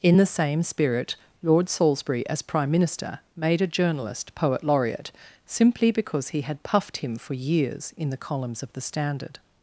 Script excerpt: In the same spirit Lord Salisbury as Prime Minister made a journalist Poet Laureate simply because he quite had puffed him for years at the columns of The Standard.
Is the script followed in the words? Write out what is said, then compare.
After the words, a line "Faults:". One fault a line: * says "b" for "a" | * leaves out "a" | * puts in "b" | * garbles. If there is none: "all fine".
In the same spirit Lord Salisbury as Prime Minister made a journalist Poet Laureate simply because he had puffed him for years in the columns of The Standard.
Faults:
* leaves out "quite"
* says "in" for "at"